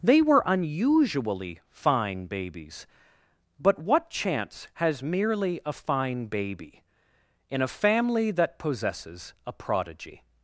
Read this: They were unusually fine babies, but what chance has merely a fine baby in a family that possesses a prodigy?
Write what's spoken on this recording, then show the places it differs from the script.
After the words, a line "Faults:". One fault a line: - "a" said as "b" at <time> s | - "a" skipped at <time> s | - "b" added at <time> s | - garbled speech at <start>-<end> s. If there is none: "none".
They were unusually fine babies, but what chance has merely a fine baby in a family that possesses a prodigy?
Faults:
none